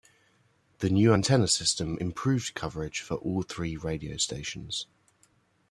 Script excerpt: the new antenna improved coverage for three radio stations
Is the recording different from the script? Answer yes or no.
yes